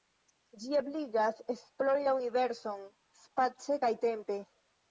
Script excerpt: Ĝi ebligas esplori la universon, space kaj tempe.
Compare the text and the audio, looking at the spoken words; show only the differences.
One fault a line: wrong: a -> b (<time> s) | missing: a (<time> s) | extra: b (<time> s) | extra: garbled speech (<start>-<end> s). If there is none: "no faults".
no faults